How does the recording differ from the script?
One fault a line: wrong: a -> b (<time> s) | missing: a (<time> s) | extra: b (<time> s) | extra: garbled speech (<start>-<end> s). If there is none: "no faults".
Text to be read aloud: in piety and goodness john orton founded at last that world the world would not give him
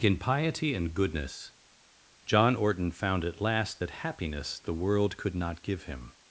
wrong: founded -> found (2.9 s)
wrong: world -> happiness (3.9 s)
wrong: would -> could (5.2 s)